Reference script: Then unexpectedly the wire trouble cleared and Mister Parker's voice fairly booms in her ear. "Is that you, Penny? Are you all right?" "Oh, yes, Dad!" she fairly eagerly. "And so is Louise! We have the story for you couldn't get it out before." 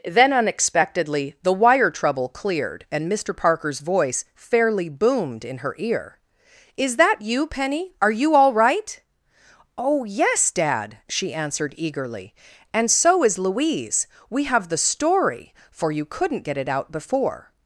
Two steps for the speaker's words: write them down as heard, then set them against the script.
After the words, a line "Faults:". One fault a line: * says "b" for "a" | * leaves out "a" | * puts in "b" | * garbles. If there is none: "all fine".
Then unexpectedly the wire trouble cleared and Mister Parker's voice fairly boomed in her ear. "Is that you, Penny? Are you all right?" "Oh, yes, Dad!" she answered eagerly. "And so is Louise! We have the story for you couldn't get it out before."
Faults:
* says "boomed" for "booms"
* says "answered" for "fairly"